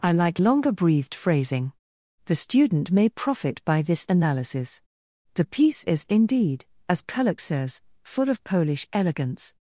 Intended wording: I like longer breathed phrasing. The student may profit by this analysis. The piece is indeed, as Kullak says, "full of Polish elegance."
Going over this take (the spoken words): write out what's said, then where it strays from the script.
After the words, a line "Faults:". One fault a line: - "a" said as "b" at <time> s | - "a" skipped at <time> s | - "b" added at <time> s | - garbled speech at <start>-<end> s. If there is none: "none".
I like longer breathed phrasing. The student may profit by this analysis. The piece is indeed, as Kullak says, "full of Polish elegance."
Faults:
none